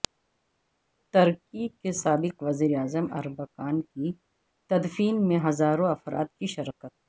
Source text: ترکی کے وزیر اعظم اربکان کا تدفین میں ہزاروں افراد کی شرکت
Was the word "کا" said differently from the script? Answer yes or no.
yes